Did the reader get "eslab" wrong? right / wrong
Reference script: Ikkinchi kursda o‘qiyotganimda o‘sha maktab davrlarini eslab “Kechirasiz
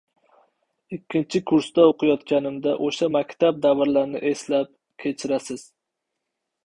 right